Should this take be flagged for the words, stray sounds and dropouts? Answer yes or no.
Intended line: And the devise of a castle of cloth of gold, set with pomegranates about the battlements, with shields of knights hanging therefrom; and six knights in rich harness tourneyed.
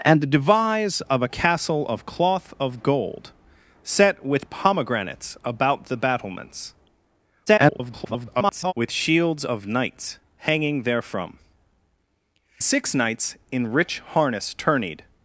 yes